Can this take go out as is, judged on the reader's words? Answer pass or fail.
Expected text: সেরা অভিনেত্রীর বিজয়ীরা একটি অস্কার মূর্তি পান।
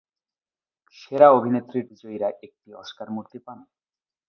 pass